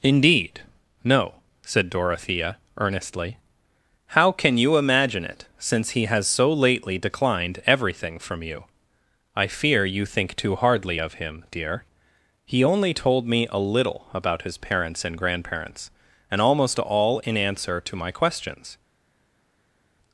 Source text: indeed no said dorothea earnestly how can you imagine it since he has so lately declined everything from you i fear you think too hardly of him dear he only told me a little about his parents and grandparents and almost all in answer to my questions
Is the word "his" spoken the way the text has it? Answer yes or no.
yes